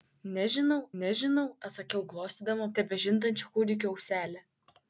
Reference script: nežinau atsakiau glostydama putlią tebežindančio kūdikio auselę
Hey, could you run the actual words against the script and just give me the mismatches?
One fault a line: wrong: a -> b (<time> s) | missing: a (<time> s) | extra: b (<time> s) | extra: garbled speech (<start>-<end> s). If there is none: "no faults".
extra: nežinau (1.0 s)
missing: putlią (2.7 s)